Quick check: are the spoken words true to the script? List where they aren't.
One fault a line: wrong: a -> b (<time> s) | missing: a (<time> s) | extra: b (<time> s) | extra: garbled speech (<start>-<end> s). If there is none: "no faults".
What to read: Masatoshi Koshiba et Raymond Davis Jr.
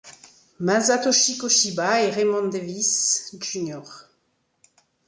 no faults